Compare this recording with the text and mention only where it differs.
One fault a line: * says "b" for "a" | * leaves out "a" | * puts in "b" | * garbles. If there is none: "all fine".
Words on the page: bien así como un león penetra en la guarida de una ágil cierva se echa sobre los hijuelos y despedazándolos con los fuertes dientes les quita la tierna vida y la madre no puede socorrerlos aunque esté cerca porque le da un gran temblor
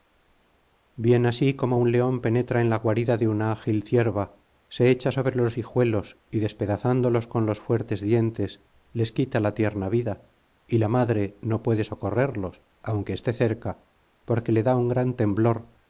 all fine